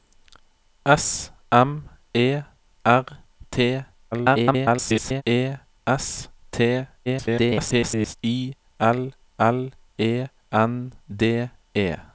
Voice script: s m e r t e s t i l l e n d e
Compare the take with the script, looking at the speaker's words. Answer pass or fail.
fail